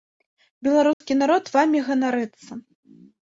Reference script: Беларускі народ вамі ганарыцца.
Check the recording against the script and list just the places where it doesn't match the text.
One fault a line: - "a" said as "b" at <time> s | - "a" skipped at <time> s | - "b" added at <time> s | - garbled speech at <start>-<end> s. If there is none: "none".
none